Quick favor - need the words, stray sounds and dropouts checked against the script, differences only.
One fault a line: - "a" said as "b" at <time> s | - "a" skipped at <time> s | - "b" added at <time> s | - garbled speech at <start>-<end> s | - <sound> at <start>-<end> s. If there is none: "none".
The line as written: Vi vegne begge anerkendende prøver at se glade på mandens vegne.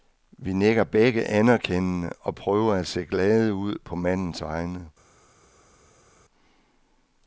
- "vegne" said as "nikker" at 0.5 s
- "og" added at 2.2 s
- "ud" added at 3.5 s